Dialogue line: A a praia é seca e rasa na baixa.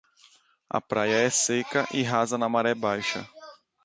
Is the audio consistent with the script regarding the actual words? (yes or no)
no